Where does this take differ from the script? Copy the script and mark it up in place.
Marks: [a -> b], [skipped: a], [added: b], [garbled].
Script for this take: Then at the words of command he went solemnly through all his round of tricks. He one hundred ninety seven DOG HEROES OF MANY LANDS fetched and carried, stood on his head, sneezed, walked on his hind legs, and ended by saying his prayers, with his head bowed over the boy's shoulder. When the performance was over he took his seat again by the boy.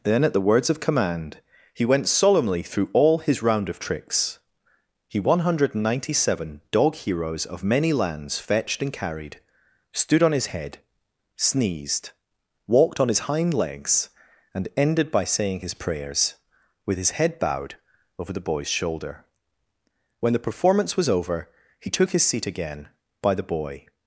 Then at the words of command he went solemnly through all his round of tricks. He one hundred ninety seven DOG HEROES OF MANY LANDS fetched and carried, stood on his head, sneezed, walked on his hind legs, and ended by saying his prayers, with his head bowed over the boy's shoulder. When the performance was over he took his seat again by the boy.